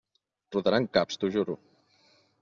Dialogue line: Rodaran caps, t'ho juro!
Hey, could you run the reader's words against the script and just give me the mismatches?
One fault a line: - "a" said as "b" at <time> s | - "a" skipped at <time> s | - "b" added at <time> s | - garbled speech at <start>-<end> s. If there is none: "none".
none